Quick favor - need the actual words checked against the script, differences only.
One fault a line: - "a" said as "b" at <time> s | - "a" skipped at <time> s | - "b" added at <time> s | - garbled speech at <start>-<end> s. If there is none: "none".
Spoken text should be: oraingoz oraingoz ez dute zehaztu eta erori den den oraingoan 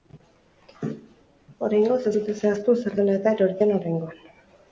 - "oraingoz" skipped at 2.0 s
- "zer dela" added at 2.8 s
- "den" skipped at 3.7 s